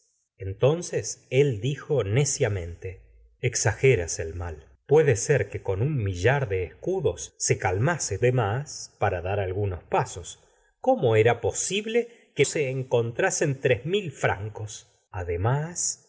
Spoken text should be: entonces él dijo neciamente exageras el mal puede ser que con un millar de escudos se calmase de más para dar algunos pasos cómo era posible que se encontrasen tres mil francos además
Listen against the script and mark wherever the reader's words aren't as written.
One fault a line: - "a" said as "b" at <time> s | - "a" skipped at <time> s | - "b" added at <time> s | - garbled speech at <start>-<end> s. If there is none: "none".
none